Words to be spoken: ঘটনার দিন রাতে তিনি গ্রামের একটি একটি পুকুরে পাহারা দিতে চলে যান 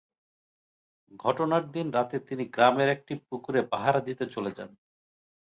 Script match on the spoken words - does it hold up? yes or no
no